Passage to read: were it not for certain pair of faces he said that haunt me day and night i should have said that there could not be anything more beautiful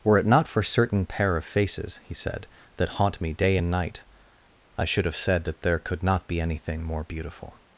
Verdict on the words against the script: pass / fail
pass